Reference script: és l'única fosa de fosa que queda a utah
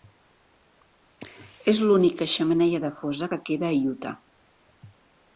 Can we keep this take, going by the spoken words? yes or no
no